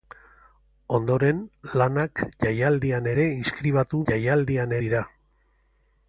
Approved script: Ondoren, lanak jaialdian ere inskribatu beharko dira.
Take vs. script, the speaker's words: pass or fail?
fail